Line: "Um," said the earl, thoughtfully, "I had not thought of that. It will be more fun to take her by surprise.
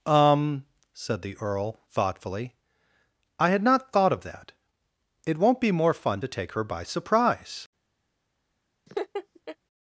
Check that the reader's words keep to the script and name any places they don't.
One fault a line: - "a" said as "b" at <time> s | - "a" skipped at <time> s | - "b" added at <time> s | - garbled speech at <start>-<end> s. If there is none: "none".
- "will" said as "won't" at 5.4 s